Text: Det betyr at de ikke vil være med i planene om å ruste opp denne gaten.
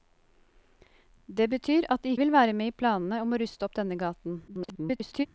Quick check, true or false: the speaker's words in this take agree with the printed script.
false